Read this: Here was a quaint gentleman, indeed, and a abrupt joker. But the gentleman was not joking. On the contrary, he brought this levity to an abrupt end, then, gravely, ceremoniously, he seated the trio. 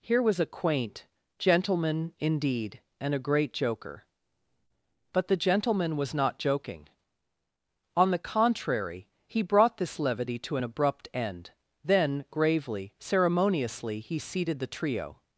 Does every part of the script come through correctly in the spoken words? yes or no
no